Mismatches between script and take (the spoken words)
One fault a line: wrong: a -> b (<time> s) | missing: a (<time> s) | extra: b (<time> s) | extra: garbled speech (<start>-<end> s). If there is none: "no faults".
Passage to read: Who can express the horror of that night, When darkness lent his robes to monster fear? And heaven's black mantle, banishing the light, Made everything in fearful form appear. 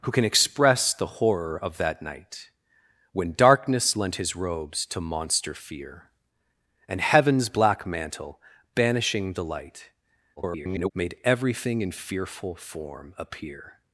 extra: garbled speech (10.4-10.9 s)